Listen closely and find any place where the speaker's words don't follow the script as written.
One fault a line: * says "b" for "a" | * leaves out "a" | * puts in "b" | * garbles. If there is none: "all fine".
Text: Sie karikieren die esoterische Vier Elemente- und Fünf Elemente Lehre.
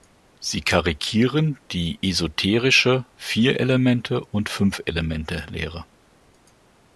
all fine